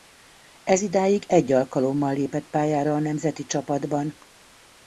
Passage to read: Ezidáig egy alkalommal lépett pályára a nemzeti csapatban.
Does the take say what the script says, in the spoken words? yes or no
yes